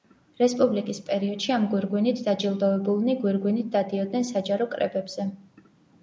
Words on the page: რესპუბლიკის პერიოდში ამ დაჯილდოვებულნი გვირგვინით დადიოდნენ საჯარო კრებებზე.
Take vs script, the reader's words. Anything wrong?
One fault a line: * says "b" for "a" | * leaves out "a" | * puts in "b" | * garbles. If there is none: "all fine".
* puts in "გვირგვინით"